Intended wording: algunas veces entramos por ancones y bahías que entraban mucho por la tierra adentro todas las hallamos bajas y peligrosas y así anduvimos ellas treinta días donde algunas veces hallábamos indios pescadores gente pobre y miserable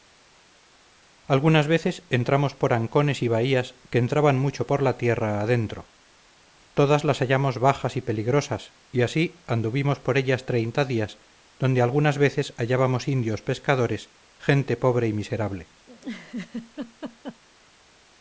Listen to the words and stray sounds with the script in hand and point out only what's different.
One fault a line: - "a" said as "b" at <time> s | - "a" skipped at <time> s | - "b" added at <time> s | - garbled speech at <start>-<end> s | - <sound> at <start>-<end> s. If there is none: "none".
- "por" added at 10.0 s
- laugh at 15.9-17.4 s